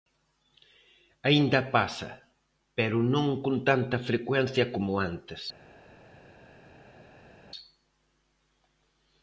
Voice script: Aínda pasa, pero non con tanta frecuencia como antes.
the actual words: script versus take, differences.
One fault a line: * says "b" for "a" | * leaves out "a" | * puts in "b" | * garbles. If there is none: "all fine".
all fine